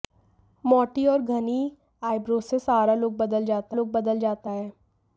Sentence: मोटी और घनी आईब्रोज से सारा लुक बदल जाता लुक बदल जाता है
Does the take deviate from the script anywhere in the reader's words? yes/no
no